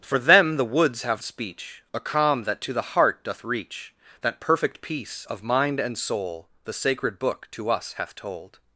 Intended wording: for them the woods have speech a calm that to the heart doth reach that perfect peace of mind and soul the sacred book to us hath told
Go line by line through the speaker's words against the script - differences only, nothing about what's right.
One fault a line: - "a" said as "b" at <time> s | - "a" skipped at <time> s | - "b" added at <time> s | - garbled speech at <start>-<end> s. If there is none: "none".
none